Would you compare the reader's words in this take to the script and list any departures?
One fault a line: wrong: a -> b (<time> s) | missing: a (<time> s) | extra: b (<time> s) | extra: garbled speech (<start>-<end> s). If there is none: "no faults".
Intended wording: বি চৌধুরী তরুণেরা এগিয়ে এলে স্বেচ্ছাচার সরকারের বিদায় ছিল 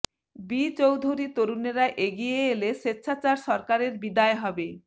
wrong: ছিল -> হবে (4.4 s)